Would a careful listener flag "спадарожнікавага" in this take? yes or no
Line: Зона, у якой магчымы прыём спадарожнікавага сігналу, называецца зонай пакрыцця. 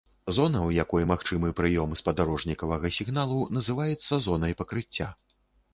no